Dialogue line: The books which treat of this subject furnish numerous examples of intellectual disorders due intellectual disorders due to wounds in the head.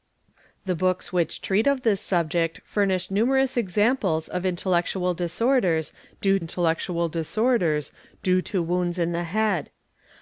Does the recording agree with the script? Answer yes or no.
yes